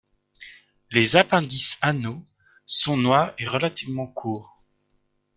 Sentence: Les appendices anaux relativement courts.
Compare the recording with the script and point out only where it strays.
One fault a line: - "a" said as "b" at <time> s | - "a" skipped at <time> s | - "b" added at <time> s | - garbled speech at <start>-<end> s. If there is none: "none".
- "sont noirs et" added at 2.6 s